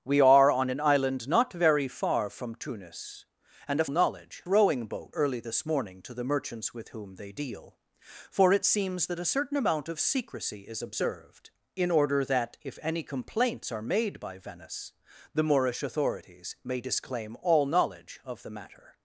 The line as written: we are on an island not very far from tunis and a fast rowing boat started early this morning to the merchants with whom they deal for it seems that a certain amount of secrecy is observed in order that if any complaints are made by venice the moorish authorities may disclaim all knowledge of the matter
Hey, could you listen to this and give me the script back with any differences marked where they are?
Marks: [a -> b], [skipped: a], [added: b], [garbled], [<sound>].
we are on an island not very far from tunis and a [fast -> knowledge] rowing boat [skipped: started] early this morning to the merchants with whom they deal for it seems that a certain amount of secrecy is observed in order that if any complaints are made by venice the moorish authorities may disclaim all knowledge of the matter